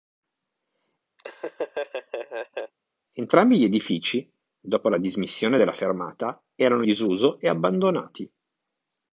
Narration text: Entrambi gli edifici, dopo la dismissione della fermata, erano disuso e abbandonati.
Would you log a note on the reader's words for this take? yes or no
no